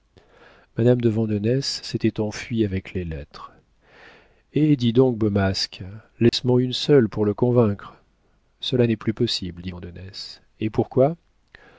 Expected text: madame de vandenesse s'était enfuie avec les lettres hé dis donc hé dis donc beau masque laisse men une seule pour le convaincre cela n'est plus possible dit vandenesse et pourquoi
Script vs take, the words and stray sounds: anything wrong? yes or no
yes